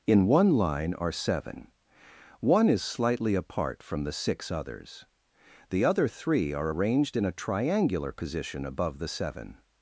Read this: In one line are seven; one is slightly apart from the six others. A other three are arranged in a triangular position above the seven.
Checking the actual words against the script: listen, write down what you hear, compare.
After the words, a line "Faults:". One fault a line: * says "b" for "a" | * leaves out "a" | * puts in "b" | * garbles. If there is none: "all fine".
In one line are seven; one is slightly apart from the six others. The other three are arranged in a triangular position above the seven.
Faults:
* says "The" for "A"